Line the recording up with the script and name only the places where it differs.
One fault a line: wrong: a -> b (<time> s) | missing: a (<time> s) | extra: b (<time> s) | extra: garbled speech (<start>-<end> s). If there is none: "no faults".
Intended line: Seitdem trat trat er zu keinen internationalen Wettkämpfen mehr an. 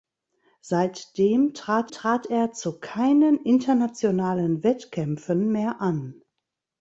no faults